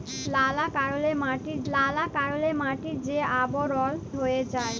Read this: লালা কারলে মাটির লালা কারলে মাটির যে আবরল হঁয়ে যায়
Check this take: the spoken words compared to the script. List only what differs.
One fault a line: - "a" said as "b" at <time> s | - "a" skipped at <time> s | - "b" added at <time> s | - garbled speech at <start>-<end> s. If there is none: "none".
none